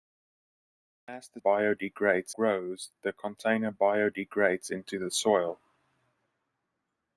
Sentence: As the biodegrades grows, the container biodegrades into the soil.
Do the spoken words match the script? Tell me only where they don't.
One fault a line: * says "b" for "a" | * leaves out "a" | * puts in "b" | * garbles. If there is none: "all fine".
all fine